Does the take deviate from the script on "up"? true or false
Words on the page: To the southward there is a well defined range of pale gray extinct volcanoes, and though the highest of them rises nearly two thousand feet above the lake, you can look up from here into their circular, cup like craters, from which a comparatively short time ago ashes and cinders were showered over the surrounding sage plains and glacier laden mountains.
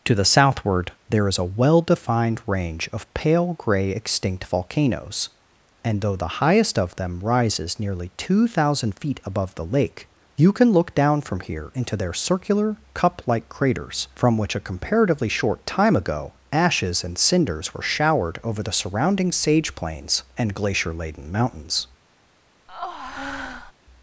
true